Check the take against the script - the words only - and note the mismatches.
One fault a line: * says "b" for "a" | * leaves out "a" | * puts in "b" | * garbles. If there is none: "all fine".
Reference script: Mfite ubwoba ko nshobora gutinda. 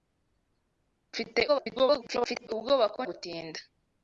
* garbles
* leaves out "nshobora"